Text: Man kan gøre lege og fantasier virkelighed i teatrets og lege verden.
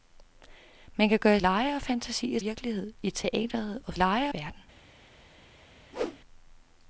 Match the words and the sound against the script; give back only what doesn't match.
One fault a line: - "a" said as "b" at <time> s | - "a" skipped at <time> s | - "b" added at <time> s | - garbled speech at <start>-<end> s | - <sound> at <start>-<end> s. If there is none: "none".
- whoosh at 5.9-6.2 s